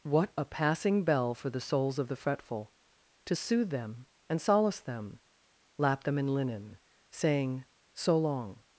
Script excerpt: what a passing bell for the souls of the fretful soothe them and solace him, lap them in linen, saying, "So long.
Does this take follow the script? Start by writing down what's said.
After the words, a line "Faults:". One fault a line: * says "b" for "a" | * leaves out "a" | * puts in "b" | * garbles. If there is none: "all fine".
what a passing bell for the souls of the fretful to soothe them and solace them, lap them in linen, saying, "So long.
Faults:
* puts in "to"
* says "them" for "him"